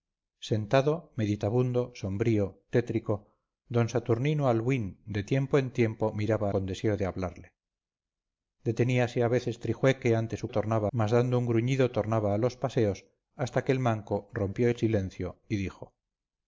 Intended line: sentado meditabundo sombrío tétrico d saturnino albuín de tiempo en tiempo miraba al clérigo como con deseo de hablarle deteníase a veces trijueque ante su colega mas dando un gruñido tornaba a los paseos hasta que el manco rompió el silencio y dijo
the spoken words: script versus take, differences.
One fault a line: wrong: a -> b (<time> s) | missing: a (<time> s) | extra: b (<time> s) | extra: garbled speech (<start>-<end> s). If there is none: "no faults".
missing: al clérigo como (6.5 s)
wrong: colega -> tornaba (10.6 s)